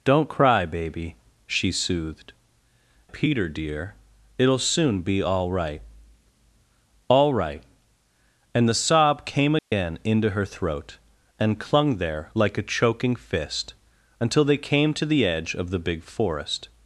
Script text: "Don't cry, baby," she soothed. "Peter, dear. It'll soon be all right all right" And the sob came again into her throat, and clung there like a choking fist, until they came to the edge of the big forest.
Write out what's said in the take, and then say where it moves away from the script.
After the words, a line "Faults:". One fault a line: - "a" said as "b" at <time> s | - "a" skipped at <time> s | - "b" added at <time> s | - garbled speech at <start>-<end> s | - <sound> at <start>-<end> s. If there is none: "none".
"Don't cry, baby," she soothed. "Peter, dear. It'll soon be all right all right" And the sob came again into her throat, and clung there like a choking fist, until they came to the edge of the big forest.
Faults:
- dropout at 9.6-9.7 s